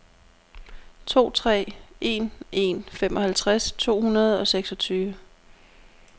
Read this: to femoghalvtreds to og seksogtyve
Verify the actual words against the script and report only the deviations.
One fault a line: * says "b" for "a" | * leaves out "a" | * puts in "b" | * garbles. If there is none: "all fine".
* puts in "tre en en"
* puts in "hundrede"